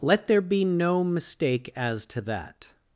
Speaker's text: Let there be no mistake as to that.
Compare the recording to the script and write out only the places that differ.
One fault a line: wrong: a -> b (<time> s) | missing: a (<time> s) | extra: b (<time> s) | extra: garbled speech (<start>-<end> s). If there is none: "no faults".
no faults